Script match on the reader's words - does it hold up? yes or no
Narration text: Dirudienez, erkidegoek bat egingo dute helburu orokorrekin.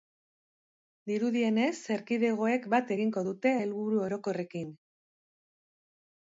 yes